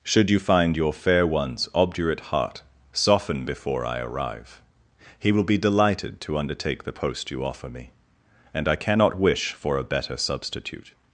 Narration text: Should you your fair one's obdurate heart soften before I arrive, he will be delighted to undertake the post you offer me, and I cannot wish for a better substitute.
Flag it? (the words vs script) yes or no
yes